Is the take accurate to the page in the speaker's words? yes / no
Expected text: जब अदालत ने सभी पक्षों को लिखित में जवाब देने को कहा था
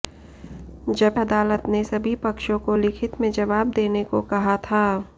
yes